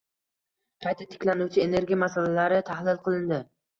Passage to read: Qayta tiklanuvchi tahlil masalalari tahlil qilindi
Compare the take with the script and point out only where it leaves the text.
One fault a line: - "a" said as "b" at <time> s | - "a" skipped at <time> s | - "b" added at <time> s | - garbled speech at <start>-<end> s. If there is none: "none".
- "tahlil" said as "energiya" at 1.6 s